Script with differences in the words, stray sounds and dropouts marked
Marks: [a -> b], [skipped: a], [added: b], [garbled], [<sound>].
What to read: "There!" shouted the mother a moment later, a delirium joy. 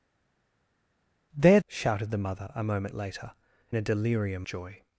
"There!" shouted the mother a moment later, a delirium joy.